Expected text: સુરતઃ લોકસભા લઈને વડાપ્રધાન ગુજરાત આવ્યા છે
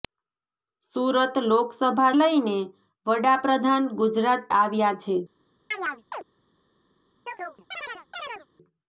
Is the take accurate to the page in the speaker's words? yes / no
yes